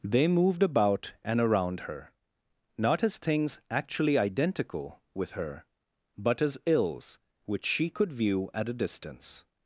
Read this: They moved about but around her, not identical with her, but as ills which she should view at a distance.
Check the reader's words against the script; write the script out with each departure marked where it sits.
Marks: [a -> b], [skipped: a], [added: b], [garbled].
They moved about [but -> and] around her, not [added: as things actually] identical with her, but as ills which she [should -> could] view at a distance.